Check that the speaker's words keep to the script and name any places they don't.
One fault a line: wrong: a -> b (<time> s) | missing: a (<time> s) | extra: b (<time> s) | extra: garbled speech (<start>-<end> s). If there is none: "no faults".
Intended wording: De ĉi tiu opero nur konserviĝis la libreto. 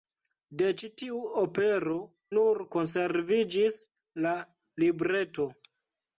no faults